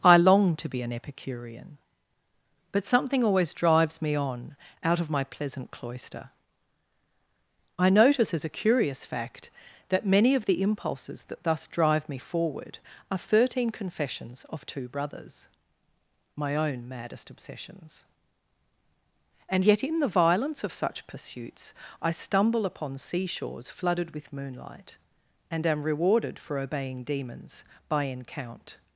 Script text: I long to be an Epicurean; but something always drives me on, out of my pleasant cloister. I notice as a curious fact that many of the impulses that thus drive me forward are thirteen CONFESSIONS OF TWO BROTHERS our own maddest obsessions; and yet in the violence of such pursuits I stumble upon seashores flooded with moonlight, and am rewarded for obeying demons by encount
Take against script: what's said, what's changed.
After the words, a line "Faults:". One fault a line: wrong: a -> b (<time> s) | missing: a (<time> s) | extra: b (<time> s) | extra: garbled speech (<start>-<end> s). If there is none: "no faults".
I long to be an Epicurean; but something always drives me on, out of my pleasant cloister. I notice as a curious fact that many of the impulses that thus drive me forward are thirteen CONFESSIONS OF TWO BROTHERS my own maddest obsessions; and yet in the violence of such pursuits I stumble upon seashores flooded with moonlight, and am rewarded for obeying demons by encount
Faults:
wrong: our -> my (16.4 s)